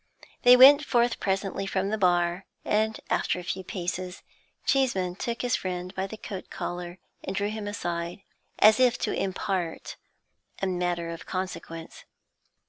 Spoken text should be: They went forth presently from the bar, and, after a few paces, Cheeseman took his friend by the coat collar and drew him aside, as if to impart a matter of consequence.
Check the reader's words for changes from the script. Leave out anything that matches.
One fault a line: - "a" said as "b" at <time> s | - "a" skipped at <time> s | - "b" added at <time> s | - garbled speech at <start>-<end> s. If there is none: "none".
none